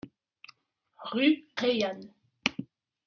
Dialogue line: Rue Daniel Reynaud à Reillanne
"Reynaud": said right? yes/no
no